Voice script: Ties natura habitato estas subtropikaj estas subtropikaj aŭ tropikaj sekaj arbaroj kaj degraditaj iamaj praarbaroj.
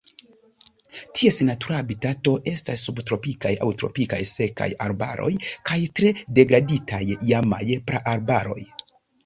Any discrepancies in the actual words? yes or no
yes